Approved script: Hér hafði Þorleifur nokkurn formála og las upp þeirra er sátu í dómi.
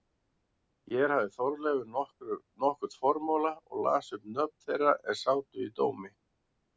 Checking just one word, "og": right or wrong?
right